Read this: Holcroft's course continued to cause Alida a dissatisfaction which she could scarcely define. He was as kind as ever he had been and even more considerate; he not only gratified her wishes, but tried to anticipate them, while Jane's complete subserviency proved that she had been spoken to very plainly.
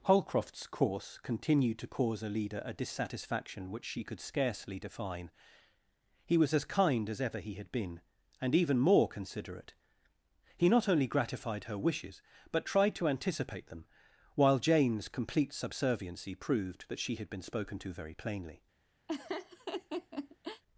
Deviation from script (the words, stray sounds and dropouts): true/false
true